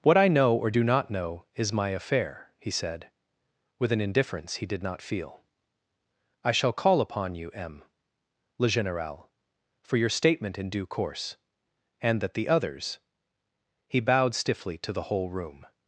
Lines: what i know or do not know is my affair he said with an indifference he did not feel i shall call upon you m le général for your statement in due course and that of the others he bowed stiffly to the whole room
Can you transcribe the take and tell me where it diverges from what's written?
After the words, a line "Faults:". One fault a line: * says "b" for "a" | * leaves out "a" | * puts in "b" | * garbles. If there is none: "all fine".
what i know or do not know is my affair he said with an indifference he did not feel i shall call upon you m le général for your statement in due course and that the others he bowed stiffly to the whole room
Faults:
* leaves out "of"